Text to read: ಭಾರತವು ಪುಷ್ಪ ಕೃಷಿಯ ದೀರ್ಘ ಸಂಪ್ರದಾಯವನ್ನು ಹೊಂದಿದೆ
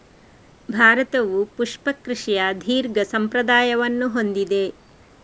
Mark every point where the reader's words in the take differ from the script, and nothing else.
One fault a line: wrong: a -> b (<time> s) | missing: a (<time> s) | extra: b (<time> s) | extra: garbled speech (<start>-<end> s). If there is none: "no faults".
no faults